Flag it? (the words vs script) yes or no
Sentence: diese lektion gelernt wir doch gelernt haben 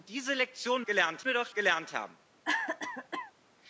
no